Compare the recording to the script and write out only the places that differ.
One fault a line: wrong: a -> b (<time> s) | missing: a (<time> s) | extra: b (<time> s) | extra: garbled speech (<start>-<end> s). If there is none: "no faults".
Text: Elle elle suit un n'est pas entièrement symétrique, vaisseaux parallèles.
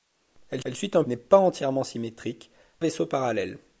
no faults